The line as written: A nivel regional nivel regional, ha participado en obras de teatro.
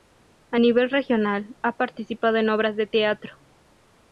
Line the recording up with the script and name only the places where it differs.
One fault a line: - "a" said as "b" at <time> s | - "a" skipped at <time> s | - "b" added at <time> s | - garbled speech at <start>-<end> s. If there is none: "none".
- "nivel regional" skipped at 1.6 s